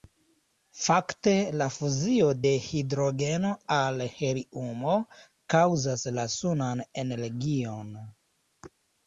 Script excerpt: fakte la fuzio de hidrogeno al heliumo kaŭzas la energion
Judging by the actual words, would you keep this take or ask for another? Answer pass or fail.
fail